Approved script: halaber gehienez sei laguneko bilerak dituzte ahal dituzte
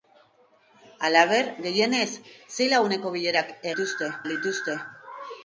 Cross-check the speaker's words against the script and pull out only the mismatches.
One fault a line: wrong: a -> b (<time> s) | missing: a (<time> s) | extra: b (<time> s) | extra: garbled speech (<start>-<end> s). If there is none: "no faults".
no faults